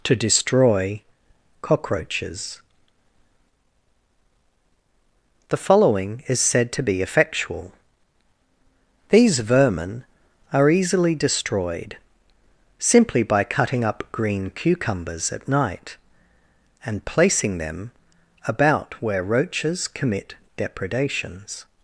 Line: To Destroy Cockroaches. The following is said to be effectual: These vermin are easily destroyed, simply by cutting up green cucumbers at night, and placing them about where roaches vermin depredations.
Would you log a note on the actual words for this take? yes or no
yes